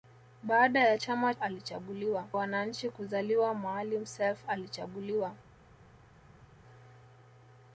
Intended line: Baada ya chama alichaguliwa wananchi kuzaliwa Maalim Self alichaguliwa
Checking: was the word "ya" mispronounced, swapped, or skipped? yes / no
no